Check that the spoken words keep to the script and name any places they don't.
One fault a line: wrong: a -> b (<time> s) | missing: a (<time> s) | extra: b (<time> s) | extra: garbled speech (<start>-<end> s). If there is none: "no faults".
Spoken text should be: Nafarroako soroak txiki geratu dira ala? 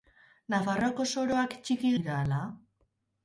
missing: geratu (1.9 s)